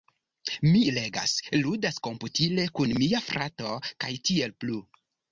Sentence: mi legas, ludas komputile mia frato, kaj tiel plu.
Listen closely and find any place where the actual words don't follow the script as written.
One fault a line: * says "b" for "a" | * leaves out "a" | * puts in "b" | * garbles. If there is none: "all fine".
* puts in "kun"